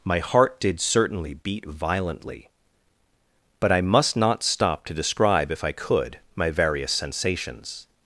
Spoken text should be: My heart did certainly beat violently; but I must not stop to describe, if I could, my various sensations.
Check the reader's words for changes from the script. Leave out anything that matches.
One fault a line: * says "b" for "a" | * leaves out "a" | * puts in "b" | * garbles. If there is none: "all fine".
all fine